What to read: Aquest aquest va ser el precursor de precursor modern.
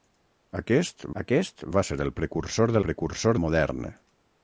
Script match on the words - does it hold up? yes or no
yes